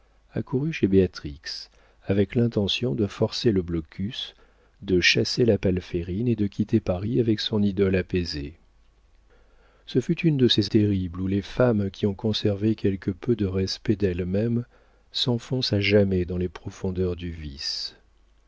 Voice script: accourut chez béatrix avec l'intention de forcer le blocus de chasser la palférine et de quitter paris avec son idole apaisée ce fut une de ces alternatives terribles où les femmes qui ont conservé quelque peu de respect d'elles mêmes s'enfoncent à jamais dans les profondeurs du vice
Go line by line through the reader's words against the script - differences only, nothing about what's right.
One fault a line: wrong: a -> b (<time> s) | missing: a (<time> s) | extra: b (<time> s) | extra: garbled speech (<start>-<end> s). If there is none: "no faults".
missing: alternatives (10.7 s)